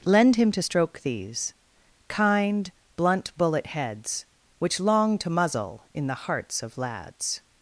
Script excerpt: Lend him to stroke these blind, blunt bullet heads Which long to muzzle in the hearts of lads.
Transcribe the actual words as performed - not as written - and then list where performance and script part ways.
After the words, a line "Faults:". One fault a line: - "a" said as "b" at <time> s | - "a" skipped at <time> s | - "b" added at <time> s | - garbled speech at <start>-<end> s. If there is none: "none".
Lend him to stroke these kind, blunt bullet heads Which long to muzzle in the hearts of lads.
Faults:
- "blind" said as "kind" at 2.1 s